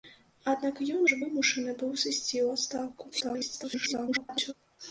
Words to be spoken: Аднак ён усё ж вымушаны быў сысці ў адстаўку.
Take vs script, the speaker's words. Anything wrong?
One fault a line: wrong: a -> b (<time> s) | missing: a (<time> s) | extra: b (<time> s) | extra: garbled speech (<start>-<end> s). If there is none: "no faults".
missing: усё (1.0 s)
extra: garbled speech (3.1-4.5 s)